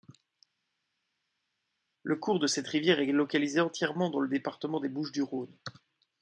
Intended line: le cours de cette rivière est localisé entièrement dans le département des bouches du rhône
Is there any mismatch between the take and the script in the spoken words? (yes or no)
no